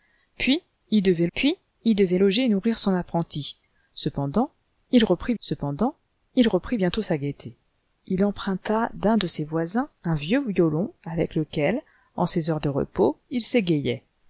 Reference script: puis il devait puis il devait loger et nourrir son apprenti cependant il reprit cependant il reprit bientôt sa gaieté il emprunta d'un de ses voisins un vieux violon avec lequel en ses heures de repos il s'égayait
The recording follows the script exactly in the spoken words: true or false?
true